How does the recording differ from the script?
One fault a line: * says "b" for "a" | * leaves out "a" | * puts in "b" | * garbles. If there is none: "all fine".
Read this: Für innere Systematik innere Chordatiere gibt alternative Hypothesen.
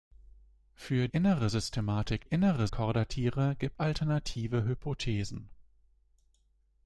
all fine